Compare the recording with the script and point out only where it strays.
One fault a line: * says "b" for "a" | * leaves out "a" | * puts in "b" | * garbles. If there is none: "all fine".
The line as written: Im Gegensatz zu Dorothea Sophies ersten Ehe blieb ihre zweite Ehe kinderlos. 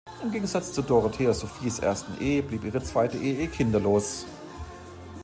all fine